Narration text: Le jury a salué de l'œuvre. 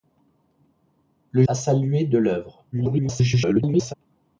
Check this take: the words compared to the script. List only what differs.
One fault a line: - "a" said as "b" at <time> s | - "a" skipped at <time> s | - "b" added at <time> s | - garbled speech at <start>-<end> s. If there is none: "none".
- "jury" skipped at 1.4 s
- garbled speech at 2.7-3.9 s